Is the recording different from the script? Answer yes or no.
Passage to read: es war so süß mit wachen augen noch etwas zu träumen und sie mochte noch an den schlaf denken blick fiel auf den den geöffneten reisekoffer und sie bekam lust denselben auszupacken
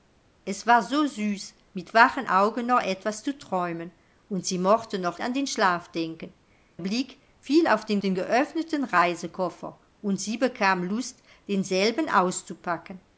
no